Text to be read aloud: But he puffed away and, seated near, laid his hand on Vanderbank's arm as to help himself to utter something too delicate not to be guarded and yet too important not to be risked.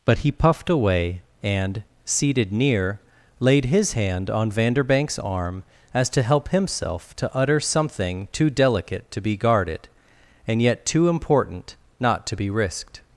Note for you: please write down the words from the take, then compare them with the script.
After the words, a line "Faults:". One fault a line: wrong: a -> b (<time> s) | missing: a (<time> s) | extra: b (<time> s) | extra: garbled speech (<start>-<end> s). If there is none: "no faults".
But he puffed away and, seated near, laid his hand on Vanderbank's arm as to help himself to utter something too delicate to be guarded and yet too important not to be risked.
Faults:
missing: not (9.1 s)